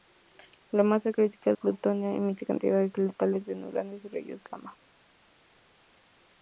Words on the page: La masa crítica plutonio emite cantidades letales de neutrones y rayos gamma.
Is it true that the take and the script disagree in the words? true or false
false